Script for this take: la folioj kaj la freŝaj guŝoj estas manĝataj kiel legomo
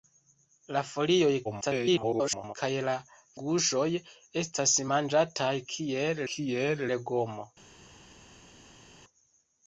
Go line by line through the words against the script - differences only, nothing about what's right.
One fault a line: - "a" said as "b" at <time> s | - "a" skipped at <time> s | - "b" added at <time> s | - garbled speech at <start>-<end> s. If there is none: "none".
- garbled speech at 1.4-2.6 s
- "freŝaj" skipped at 2.9 s
- "kiel" added at 6.3 s